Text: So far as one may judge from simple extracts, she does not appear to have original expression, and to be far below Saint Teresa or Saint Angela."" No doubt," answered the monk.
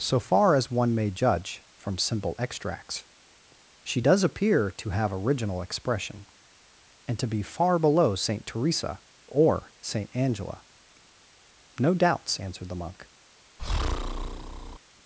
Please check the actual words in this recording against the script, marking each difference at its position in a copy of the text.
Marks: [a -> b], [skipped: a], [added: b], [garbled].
So far as one may judge from simple extracts, she does [skipped: not] appear to have original expression, and to be far below Saint Teresa or Saint Angela."" No [doubt," -> doubts] answered the monk.